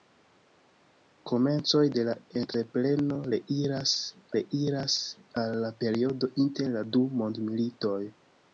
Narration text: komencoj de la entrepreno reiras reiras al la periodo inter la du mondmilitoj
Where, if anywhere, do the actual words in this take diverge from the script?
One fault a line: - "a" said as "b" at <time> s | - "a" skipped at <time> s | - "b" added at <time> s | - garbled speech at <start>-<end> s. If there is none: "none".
none